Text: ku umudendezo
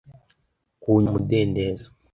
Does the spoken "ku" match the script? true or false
true